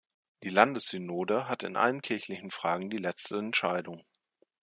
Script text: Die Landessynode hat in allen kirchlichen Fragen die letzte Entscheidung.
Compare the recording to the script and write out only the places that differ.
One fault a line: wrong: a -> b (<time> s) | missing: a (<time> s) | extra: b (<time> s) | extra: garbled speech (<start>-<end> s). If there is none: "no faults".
no faults